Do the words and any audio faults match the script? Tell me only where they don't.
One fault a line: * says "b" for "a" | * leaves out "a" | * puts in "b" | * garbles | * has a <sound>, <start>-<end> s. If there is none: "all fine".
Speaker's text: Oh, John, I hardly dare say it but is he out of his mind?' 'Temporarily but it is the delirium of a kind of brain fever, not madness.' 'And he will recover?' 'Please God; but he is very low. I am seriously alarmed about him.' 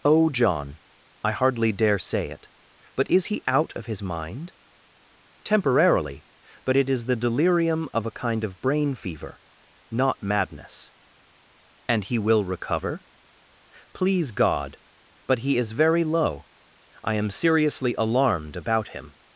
all fine